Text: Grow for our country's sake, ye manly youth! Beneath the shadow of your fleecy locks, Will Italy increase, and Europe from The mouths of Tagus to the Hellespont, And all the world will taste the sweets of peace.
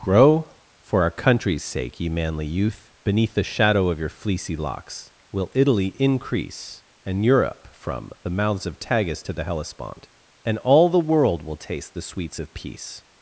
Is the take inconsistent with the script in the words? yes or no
no